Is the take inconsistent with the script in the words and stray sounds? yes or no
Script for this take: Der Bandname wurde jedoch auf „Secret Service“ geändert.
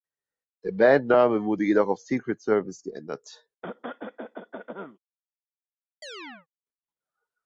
yes